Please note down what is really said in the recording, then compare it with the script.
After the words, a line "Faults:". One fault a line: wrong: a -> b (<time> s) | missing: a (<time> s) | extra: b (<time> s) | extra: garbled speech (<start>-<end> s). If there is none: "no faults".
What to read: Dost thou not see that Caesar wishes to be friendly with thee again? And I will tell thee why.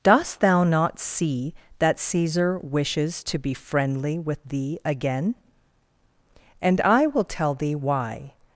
Dost thou not see that Caesar wishes to be friendly with thee again? And I will tell thee why.
Faults:
no faults